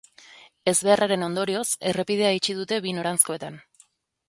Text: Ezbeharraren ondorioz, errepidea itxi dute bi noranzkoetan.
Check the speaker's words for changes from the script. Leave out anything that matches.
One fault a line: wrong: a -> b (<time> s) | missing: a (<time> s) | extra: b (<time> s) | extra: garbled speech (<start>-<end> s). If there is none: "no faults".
no faults